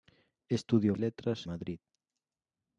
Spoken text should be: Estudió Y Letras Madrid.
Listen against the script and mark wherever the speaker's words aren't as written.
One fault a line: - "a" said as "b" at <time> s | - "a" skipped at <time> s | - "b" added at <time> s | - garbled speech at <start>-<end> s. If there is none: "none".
none